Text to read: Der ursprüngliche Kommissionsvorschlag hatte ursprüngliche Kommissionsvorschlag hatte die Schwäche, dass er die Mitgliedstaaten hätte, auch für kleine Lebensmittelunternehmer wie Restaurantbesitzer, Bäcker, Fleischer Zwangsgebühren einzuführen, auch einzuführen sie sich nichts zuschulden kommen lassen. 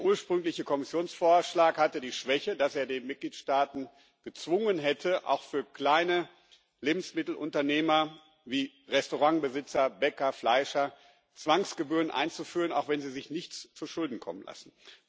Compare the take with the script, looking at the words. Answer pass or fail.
fail